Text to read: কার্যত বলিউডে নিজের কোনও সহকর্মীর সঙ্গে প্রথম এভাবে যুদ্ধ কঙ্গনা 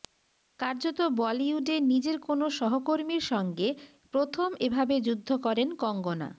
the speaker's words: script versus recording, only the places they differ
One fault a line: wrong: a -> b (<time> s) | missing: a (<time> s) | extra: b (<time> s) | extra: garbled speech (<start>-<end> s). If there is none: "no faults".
extra: করেন (5.5 s)